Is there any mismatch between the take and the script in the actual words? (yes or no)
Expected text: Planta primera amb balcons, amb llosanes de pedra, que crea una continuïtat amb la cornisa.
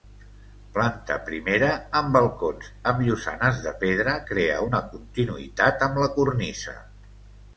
yes